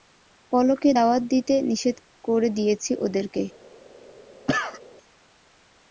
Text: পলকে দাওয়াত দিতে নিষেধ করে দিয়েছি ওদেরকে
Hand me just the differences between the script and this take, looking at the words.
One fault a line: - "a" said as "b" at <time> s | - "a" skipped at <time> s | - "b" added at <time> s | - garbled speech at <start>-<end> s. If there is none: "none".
none